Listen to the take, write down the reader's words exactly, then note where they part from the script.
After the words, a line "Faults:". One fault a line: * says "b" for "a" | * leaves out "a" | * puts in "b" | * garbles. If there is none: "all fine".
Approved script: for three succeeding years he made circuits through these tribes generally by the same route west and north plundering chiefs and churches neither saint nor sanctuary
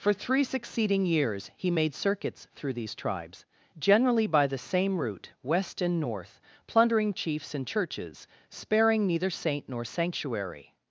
for three succeeding years he made circuits through these tribes generally by the same route west and north plundering chiefs and churches sparing neither saint nor sanctuary
Faults:
* puts in "sparing"